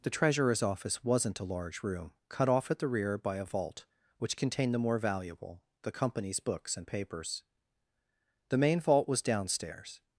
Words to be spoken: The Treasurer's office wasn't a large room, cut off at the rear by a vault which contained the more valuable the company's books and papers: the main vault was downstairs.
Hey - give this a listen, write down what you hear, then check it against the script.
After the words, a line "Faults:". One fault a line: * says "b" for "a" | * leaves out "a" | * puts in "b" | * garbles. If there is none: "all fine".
The Treasurer's office wasn't a large room, cut off at the rear by a vault which contained the more valuable the company's books and papers: the main vault was downstairs.
Faults:
all fine